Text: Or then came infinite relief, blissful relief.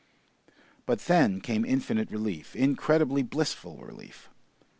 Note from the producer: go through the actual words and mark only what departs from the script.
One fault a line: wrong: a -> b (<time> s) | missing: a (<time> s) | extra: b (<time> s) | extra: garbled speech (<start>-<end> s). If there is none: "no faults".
wrong: Or -> But (0.9 s)
extra: incredibly (2.5 s)